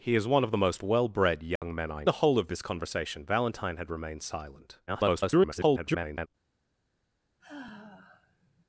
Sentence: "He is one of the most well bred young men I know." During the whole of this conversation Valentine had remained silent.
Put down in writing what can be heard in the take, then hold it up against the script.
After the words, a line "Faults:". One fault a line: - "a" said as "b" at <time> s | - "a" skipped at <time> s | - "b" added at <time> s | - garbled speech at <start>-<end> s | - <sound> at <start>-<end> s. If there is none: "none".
"He is one of the most well bred young men I the whole of this conversation Valentine had remained silent. [garbled]
Faults:
- dropout at 1.6-1.6 s
- "know During" skipped at 2.0 s
- garbled speech at 4.9-6.3 s
- sigh at 7.4-8.6 s